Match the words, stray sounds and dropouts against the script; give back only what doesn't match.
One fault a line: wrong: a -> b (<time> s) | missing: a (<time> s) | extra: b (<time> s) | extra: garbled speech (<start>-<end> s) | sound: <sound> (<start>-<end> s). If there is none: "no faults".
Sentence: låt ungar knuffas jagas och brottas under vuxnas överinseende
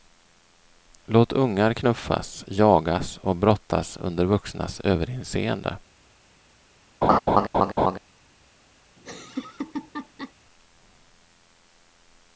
sound: laugh (7.0-8.0 s)
sound: laugh (9.0-10.3 s)